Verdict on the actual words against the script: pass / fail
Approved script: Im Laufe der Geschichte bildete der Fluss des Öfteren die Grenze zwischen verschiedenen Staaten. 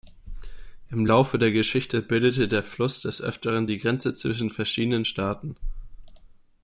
pass